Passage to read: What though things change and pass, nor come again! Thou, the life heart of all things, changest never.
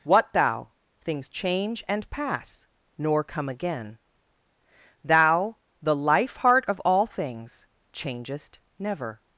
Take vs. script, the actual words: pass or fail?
fail